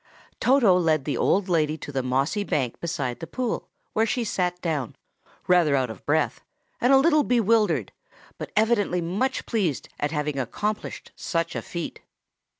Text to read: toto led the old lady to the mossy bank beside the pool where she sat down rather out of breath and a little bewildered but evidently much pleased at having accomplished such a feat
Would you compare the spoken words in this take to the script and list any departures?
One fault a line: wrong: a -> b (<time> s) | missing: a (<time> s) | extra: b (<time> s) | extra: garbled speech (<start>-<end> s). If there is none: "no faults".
no faults